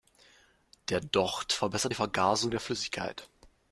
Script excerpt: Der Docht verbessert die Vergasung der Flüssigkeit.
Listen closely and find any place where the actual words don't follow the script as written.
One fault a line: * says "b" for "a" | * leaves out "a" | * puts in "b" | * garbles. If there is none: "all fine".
all fine